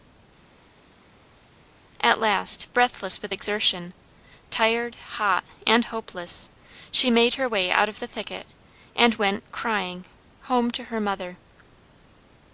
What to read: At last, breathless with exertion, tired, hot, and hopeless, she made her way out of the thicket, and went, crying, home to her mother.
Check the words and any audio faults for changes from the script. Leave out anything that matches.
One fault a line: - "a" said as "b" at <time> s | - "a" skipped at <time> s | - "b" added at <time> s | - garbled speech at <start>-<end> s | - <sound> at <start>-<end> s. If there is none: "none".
none